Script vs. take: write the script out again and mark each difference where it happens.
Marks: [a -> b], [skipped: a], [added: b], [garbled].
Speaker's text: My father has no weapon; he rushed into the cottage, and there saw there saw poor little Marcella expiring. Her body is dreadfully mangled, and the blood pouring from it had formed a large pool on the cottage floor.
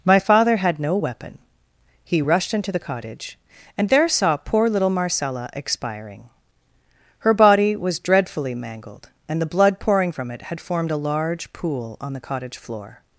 My father [has -> had] no weapon; he rushed into the cottage, and there saw [skipped: there saw] poor little Marcella expiring. Her body [is -> was] dreadfully mangled, and the blood pouring from it had formed a large pool on the cottage floor.